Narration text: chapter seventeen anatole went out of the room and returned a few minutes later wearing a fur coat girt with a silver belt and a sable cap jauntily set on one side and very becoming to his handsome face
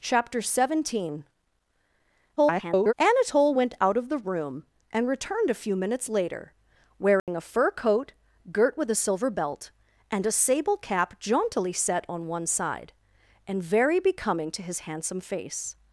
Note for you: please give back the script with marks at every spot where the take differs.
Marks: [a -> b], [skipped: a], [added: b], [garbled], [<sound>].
chapter seventeen [garbled] anatole went out of the room and returned a few minutes later wearing [dropout] a fur coat girt with a silver belt and a sable cap jauntily set on one side and very becoming to his handsome face